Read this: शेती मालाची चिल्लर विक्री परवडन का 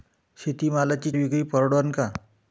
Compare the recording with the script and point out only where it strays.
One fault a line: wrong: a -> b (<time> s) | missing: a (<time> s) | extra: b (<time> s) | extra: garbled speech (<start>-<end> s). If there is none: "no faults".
missing: चिल्लर (1.1 s)